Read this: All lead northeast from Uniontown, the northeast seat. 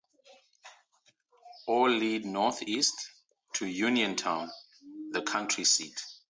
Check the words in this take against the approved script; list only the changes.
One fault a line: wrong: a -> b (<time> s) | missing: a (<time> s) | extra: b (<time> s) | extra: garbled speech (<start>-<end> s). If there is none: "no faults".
wrong: from -> to (3.6 s)
wrong: northeast -> county (5.2 s)